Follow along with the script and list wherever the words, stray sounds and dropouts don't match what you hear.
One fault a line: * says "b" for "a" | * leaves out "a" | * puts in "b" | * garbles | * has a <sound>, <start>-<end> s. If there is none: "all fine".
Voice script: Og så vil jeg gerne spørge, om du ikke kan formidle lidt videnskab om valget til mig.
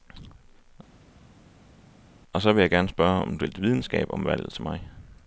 * leaves out "ikke kan formidle"